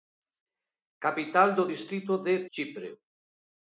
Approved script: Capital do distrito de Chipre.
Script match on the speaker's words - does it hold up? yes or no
yes